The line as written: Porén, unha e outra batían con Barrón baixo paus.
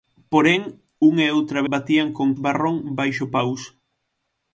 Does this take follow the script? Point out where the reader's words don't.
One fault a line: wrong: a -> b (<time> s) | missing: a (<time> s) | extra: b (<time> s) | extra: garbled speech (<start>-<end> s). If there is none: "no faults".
no faults